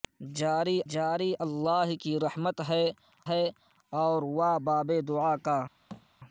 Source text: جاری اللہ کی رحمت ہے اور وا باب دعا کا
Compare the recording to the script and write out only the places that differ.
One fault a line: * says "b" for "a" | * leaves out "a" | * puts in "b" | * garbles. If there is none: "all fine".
* puts in "جاری"
* puts in "ہے"